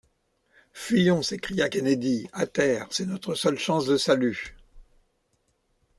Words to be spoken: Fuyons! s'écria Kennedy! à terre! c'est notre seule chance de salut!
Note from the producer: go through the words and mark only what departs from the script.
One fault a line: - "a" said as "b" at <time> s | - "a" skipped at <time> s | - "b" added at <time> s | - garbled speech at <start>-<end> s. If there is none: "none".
none